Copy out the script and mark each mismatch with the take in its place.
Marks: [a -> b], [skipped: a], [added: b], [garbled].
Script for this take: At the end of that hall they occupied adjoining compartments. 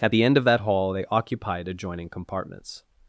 At the end of that hall they occupied adjoining compartments.